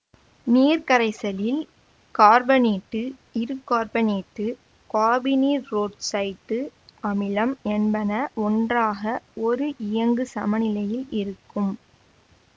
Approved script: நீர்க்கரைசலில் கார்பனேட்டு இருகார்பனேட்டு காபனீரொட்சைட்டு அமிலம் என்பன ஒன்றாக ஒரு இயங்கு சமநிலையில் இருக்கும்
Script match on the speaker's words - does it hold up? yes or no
yes